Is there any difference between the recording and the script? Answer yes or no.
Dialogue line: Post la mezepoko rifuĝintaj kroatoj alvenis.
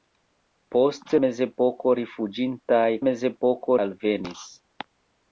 yes